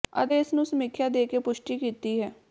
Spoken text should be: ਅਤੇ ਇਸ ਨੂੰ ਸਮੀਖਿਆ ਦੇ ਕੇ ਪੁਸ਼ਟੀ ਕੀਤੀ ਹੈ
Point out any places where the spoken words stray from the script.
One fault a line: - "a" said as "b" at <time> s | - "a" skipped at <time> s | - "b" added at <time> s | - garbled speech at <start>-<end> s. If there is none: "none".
none